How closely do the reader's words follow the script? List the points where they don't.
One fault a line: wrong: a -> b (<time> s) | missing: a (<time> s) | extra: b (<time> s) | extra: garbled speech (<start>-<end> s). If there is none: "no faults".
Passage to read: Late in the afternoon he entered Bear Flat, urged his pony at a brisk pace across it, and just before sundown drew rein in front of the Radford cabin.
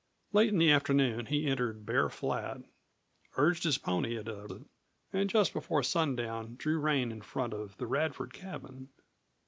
missing: brisk pace across (4.5 s)